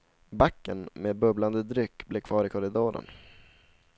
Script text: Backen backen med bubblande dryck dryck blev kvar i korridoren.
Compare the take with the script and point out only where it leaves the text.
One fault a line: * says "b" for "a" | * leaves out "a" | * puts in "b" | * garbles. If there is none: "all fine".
* leaves out "backen"
* leaves out "dryck"